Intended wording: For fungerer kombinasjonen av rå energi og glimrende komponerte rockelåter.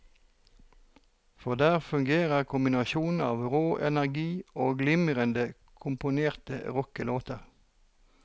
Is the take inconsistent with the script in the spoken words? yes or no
yes